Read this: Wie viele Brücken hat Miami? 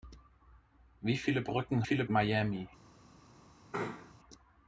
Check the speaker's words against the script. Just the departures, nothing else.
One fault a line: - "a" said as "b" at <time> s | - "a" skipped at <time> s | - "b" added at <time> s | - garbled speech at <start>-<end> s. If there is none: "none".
- "hat" said as "viele" at 1.8 s